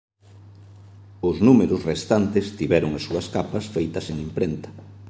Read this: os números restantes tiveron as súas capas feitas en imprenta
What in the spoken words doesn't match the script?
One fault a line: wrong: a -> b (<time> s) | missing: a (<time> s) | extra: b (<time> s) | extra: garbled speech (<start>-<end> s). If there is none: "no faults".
no faults